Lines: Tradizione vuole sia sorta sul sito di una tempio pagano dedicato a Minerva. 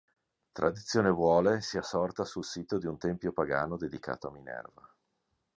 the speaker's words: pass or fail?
fail